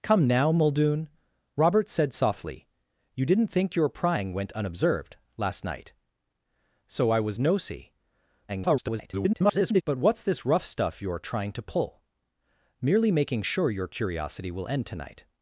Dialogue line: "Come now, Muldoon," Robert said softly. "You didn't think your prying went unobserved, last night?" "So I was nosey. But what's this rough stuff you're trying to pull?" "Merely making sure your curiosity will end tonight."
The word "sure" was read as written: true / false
true